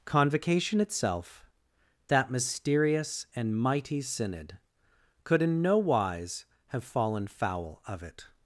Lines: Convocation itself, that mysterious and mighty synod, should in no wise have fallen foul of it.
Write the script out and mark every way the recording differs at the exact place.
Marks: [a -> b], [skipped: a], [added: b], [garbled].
Convocation itself, that mysterious and mighty synod, [should -> could] in no wise have fallen foul of it.